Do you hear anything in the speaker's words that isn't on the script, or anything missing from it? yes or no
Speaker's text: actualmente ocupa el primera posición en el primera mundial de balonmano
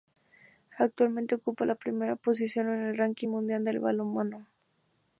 yes